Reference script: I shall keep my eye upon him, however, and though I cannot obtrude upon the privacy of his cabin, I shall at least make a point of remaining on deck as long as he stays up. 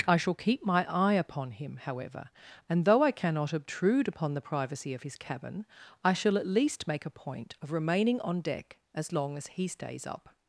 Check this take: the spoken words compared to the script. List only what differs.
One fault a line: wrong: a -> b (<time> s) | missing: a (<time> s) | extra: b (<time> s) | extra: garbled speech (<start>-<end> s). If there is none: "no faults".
no faults